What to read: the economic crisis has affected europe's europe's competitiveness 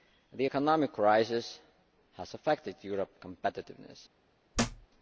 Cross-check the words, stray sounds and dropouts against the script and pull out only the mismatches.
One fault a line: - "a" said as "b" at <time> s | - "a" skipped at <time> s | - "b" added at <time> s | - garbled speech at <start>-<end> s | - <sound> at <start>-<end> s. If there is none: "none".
- "europe's" skipped at 3.2 s
- thud at 4.5-4.9 s